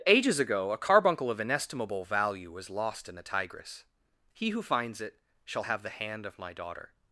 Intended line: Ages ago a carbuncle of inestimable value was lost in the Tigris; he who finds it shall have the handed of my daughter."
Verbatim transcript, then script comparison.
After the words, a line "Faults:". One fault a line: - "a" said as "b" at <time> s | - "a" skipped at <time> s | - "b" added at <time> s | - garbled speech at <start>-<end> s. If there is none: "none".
Ages ago a carbuncle of inestimable value was lost in the Tigris; he who finds it shall have the hand of my daughter."
Faults:
- "handed" said as "hand" at 5.9 s